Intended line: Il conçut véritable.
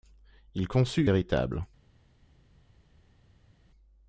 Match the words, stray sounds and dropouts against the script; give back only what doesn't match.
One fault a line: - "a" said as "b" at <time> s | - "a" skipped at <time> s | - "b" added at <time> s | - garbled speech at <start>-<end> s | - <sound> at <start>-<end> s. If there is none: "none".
none